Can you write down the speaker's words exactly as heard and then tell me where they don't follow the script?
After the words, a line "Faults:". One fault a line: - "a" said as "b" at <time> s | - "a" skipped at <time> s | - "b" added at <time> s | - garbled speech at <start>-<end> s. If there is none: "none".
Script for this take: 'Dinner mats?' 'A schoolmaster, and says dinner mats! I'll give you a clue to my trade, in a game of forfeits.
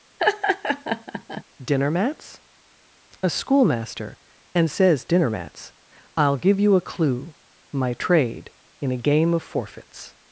'Dinner mats?' 'A schoolmaster, and says dinner mats! I'll give you a clue my trade, in a game of forfeits.
Faults:
- "to" skipped at 7.3 s